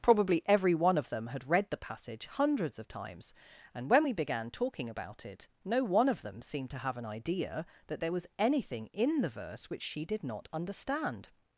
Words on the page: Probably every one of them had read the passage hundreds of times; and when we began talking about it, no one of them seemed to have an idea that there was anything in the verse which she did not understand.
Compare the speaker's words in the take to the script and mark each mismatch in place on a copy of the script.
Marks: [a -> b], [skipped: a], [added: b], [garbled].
Probably every one of them had read the passage hundreds of times; and when we began talking about it, no one of them seemed to have an idea that there was anything in the verse which she did not understand.